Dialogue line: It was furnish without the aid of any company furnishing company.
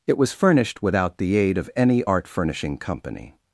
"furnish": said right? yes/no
no